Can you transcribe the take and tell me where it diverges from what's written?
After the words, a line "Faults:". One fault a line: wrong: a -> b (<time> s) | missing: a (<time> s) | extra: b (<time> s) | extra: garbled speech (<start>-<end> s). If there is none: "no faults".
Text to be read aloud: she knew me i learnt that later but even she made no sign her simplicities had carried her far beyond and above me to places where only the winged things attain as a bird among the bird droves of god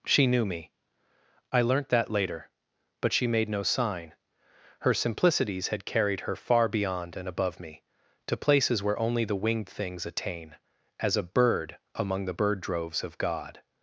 she knew me i learnt that later but she made no sign her simplicities had carried her far beyond and above me to places where only the winged things attain as a bird among the bird droves of god
Faults:
missing: even (3.1 s)